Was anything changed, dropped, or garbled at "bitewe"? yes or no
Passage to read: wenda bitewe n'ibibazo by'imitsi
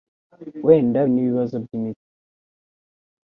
yes